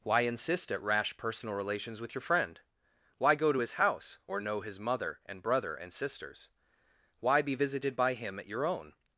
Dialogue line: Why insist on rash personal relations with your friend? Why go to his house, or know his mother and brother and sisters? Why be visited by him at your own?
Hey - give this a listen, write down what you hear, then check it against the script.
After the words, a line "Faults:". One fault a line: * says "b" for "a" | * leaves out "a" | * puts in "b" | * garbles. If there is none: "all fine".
Why insist at rash personal relations with your friend? Why go to his house, or know his mother and brother and sisters? Why be visited by him at your own?
Faults:
* says "at" for "on"